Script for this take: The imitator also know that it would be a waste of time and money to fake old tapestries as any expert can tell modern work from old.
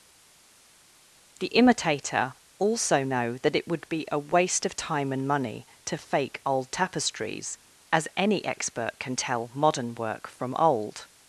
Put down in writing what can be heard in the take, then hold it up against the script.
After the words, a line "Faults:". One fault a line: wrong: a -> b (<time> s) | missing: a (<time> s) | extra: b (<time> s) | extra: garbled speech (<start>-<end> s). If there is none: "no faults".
The imitator also know that it would be a waste of time and money to fake old tapestries as any expert can tell modern work from old.
Faults:
no faults